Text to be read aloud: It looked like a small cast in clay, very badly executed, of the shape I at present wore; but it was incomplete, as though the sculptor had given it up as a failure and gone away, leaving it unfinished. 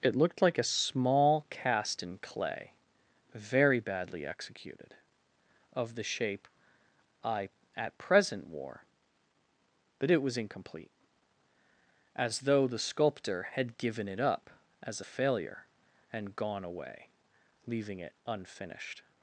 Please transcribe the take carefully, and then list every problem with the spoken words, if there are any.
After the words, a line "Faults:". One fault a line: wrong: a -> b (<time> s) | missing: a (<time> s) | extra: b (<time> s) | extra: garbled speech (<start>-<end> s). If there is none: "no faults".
It looked like a small cast in clay, very badly executed, of the shape I at present wore; but it was incomplete, as though the sculptor had given it up as a failure and gone away, leaving it unfinished.
Faults:
no faults